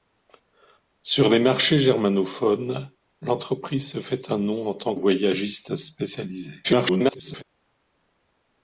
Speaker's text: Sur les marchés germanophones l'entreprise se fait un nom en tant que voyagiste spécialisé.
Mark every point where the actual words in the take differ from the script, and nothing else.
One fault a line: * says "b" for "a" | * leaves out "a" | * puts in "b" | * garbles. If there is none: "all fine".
* leaves out "que"
* garbles